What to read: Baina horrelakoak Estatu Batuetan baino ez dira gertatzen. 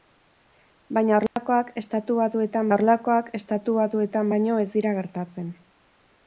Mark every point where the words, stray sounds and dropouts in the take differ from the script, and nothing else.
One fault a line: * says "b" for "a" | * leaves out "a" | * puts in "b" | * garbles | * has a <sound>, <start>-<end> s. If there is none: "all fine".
* has a dropout, 1.3-1.4 s
* puts in "horrelakoak Estatu Batuetan"